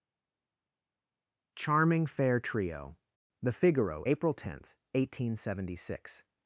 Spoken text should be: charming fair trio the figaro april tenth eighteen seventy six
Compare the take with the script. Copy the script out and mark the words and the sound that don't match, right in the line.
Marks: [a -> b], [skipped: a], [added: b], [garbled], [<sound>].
charming fair trio the figaro april tenth eighteen seventy six